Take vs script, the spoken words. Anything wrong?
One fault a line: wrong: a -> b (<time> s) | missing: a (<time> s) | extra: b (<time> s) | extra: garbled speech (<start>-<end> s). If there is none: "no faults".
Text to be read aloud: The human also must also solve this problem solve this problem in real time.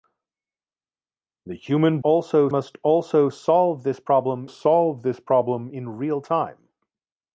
no faults